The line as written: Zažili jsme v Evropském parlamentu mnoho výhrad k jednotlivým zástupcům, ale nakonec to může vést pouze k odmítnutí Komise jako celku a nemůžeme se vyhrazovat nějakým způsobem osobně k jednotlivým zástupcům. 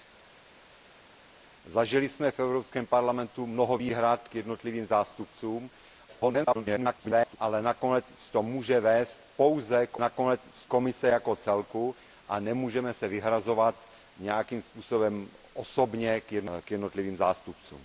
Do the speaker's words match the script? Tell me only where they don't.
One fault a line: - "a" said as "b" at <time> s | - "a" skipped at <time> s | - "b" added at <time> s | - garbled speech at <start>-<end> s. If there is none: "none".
- garbled speech at 6.1-7.4 s
- "odmítnutí" said as "nakonec" at 10.0 s